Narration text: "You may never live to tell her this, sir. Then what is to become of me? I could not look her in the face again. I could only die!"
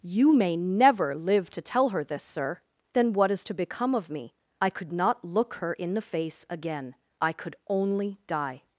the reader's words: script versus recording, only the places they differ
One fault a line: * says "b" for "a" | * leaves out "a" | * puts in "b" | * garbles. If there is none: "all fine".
all fine